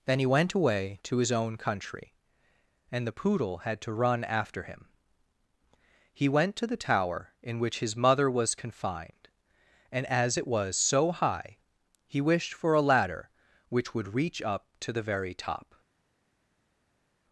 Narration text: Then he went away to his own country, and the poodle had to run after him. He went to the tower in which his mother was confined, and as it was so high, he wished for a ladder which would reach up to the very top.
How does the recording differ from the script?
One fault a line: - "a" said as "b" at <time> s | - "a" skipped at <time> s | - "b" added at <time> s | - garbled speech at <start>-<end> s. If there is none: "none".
none